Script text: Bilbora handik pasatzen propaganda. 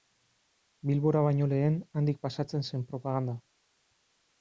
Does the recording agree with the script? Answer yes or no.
no